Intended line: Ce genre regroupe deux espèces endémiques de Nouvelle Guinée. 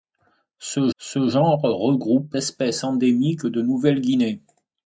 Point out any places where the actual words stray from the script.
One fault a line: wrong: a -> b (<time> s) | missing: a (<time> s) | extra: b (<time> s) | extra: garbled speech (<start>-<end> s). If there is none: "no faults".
extra: ce (1.0 s)
missing: deux (2.4 s)